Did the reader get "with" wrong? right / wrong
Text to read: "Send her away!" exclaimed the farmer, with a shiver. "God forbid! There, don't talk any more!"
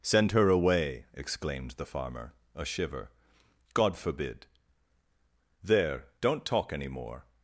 wrong